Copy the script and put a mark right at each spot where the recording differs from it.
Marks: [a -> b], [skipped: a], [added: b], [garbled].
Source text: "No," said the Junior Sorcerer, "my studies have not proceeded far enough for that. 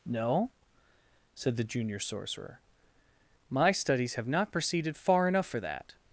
"No," said the Junior Sorcerer, "my studies have not proceeded far enough for that.